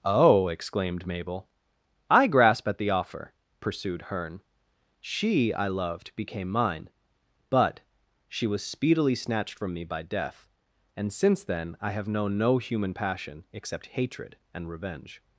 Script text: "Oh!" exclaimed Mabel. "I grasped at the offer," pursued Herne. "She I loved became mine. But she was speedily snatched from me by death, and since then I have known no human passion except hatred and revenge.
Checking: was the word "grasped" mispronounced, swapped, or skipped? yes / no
yes